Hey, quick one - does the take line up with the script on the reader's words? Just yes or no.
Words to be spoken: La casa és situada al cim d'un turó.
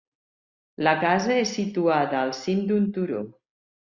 yes